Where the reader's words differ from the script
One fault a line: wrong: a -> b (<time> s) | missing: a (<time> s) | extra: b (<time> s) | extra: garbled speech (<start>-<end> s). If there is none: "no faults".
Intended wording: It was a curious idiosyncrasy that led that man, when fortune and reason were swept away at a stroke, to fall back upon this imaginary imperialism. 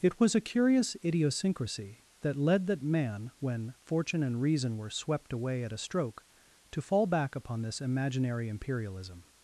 no faults